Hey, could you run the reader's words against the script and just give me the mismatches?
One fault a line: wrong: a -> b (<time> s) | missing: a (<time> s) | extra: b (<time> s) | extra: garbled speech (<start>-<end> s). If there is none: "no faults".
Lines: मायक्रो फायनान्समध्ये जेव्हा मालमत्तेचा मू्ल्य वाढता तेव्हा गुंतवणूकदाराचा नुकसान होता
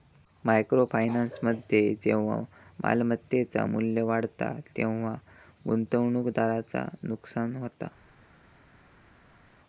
no faults